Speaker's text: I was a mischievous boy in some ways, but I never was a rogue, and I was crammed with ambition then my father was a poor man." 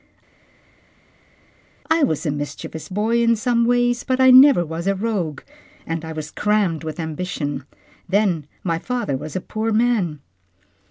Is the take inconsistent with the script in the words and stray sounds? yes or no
no